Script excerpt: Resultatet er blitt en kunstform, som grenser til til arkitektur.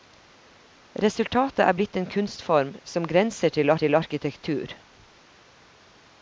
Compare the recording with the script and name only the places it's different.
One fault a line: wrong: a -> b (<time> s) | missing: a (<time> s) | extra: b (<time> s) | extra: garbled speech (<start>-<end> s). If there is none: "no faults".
no faults